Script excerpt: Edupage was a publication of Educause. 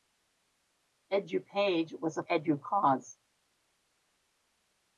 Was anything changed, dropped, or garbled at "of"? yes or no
yes